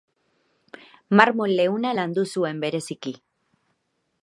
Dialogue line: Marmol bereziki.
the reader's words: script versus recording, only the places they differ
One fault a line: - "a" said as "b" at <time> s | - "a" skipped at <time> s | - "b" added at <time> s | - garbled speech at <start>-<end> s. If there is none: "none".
- "leuna landu zuen" added at 1.6 s